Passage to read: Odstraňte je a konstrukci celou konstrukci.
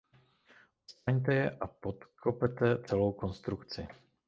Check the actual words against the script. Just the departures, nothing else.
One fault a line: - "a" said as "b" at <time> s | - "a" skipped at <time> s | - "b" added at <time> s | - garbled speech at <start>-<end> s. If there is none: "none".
- "konstrukci" said as "podkopete" at 1.6 s